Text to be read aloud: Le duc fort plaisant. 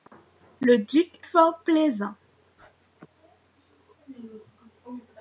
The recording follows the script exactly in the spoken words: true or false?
true